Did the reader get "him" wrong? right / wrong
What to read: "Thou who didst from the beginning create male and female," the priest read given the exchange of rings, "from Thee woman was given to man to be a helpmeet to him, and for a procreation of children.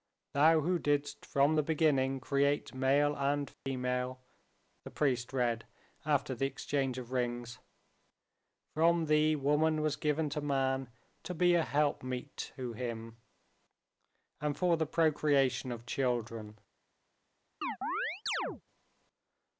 right